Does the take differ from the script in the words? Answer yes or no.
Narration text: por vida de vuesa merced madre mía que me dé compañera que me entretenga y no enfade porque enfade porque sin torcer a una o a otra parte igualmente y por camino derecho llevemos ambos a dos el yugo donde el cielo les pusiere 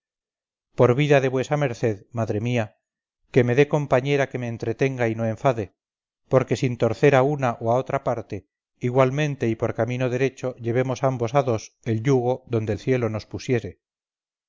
yes